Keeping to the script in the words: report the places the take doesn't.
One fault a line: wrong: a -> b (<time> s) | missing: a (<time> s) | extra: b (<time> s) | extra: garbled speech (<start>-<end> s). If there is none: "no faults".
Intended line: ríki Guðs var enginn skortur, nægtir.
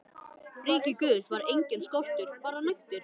extra: bara (2.5 s)